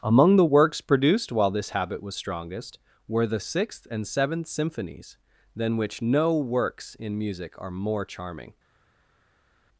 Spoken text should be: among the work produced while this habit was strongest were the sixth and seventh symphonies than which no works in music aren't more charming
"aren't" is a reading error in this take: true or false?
true